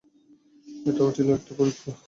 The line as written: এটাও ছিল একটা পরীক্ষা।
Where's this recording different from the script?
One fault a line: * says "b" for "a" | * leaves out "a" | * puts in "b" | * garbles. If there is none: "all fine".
all fine